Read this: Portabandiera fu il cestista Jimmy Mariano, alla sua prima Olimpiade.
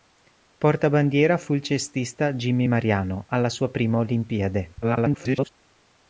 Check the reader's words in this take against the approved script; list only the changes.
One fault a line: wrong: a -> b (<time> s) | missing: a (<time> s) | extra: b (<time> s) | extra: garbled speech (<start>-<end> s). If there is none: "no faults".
extra: garbled speech (4.8-5.5 s)